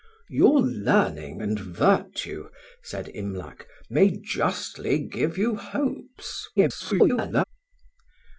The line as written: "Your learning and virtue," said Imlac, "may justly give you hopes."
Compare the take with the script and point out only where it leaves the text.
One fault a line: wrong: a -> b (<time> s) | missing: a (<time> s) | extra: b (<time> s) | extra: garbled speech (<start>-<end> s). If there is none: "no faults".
extra: garbled speech (6.6-7.4 s)